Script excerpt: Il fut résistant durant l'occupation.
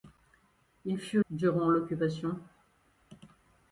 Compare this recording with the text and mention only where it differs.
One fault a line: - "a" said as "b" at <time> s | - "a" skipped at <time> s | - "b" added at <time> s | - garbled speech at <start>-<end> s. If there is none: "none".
- "résistant" skipped at 1.2 s